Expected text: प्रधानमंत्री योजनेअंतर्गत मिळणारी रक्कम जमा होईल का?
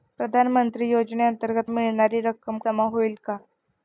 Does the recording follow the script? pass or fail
pass